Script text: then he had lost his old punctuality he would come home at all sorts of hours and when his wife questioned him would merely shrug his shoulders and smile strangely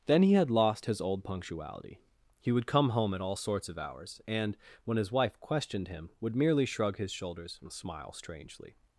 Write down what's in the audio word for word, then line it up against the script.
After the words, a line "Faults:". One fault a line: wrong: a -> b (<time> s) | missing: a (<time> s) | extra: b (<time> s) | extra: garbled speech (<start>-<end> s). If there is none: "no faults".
then he had lost his old punctuality he would come home at all sorts of hours and when his wife questioned him would merely shrug his shoulders and smile strangely
Faults:
no faults